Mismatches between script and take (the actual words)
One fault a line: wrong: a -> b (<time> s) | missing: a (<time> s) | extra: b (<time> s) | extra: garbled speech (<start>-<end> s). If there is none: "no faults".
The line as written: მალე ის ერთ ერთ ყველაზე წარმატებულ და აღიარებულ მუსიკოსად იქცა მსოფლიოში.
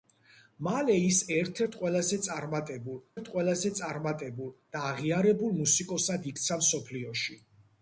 extra: ერთ ყველაზე წარმატებულ (3.2 s)